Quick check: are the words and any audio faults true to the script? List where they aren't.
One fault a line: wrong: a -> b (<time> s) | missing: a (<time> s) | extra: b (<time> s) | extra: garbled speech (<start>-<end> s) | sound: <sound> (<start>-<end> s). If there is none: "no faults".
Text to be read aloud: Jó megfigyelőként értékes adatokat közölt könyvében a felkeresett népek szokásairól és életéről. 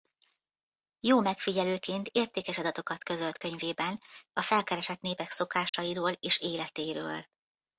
sound: dropout (5.7-5.7 s)